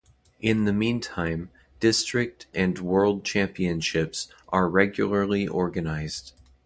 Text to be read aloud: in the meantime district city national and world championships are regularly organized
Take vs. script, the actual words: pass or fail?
fail